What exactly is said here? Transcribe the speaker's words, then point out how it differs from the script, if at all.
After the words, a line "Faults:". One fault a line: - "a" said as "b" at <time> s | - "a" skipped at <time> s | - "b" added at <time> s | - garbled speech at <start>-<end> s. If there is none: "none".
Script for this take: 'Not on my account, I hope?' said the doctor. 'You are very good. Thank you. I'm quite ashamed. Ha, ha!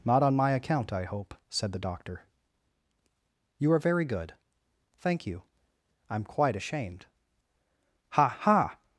'Not on my account, I hope?' said the doctor. 'You are very good. Thank you. I'm quite ashamed. Ha, ha!
Faults:
none